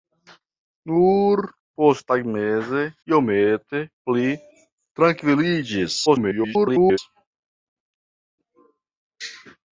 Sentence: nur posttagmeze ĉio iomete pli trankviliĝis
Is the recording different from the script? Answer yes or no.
yes